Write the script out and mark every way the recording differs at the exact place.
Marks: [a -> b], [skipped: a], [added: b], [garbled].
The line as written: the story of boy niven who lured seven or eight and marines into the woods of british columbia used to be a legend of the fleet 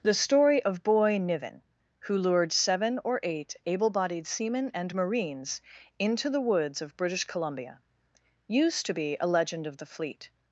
the story of boy niven who lured seven or eight [added: able bodied seamen] and marines into the woods of british columbia used to be a legend of the fleet